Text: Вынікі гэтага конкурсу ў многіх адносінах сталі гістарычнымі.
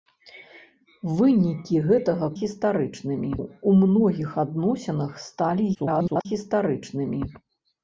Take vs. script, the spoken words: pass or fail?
fail